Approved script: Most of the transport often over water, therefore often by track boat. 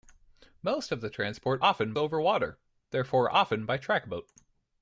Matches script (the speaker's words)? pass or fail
pass